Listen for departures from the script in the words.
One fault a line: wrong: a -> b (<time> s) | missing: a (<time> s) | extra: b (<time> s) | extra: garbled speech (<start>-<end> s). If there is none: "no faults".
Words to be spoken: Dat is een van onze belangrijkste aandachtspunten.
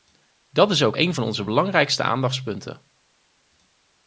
extra: ook (0.8 s)